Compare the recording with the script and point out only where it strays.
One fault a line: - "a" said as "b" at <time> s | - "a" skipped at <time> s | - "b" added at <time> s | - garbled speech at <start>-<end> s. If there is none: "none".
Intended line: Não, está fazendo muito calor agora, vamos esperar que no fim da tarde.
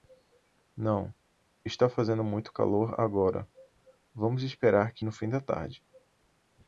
none